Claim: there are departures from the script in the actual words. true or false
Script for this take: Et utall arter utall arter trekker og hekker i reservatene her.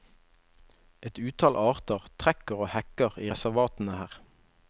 true